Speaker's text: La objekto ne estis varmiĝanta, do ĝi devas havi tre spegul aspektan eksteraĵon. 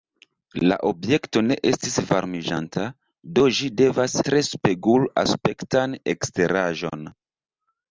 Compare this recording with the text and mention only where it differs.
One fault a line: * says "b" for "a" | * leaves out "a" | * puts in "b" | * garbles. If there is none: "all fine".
* leaves out "havi"